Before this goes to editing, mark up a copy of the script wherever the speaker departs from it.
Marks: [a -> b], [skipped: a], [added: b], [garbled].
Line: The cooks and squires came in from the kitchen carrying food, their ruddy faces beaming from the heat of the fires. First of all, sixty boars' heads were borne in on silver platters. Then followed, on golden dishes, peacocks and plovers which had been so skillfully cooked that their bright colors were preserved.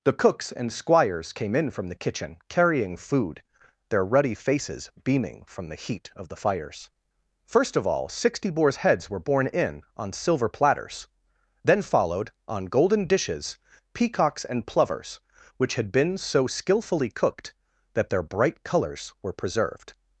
The cooks and squires came in from the kitchen carrying food, their ruddy faces beaming from the heat of the fires. First of all, sixty boars' heads were borne in on silver platters. Then followed, on golden dishes, peacocks and plovers which had been so skillfully cooked that their bright colors were preserved.